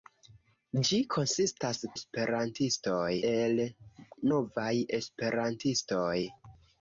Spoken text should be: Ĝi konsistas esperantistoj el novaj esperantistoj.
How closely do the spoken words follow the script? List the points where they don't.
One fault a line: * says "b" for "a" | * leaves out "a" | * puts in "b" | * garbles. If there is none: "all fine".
all fine